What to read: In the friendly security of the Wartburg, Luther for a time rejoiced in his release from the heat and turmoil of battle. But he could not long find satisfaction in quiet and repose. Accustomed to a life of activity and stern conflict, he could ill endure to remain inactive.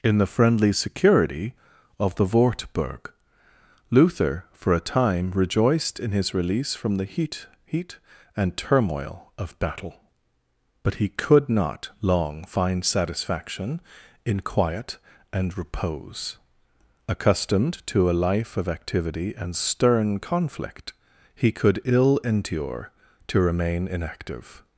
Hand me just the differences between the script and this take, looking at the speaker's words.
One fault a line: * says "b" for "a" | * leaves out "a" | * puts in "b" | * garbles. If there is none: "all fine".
* puts in "heat"